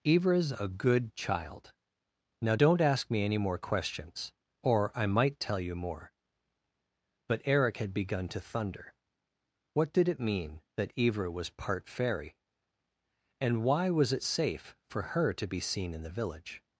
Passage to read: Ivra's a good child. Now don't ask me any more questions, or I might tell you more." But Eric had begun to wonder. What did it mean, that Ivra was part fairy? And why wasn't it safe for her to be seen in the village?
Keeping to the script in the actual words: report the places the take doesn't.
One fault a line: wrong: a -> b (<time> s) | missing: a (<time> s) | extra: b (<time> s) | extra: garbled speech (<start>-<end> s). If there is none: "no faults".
wrong: wonder -> thunder (8.4 s)
wrong: wasn't -> was (13.9 s)